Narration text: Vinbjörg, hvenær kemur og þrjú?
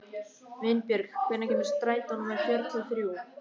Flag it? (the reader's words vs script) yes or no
yes